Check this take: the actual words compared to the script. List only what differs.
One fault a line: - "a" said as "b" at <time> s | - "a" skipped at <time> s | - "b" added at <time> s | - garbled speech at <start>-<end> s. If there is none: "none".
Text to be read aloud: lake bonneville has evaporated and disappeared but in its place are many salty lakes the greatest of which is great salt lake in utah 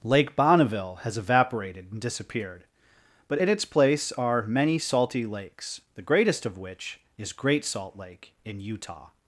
none